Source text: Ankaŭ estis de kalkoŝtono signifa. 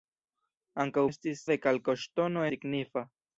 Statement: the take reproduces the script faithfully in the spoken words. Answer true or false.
true